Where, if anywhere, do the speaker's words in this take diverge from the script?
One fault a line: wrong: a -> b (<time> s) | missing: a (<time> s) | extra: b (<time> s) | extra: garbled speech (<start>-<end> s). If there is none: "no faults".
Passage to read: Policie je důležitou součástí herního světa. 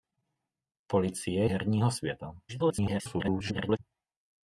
missing: je důležitou součástí (1.5 s)
extra: garbled speech (2.5-3.8 s)